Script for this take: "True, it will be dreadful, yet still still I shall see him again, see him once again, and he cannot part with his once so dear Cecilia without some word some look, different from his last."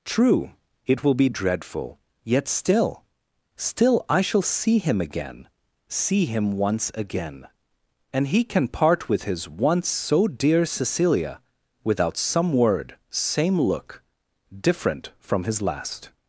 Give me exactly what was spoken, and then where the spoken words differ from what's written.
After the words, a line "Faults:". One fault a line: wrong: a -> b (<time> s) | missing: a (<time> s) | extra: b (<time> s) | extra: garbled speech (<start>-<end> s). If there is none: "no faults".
"True, it will be dreadful, yet still still I shall see him again, see him once again, and he can part with his once so dear Cecilia without some word same look, different from his last."
Faults:
wrong: cannot -> can (8.4 s)
wrong: some -> same (13.1 s)